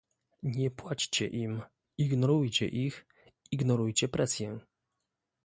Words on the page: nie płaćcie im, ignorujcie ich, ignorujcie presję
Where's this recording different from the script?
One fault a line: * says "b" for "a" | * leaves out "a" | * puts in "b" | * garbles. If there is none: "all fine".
all fine